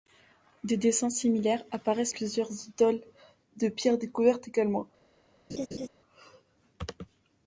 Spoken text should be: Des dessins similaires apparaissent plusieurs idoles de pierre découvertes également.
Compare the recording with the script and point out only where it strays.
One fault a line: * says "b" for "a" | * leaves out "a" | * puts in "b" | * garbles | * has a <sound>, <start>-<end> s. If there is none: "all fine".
* has a laugh, 5.5-5.9 s